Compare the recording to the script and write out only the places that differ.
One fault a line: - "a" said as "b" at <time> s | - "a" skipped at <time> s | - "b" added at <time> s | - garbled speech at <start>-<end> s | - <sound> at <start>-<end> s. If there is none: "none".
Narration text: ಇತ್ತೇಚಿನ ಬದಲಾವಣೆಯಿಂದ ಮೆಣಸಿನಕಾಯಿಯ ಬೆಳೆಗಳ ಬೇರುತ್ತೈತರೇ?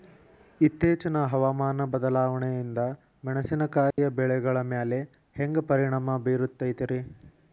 - "ಹವಾಮಾನ" added at 1.2 s
- dropout at 3.9-4.0 s
- "ಮ್ಯಾಲೆ ಹ್ಯಾಂಗ ಪರಿಣಾಮ" added at 4.7 s